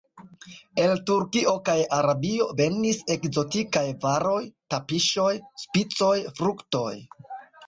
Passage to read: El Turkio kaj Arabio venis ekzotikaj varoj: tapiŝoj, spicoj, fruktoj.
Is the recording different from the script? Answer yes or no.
no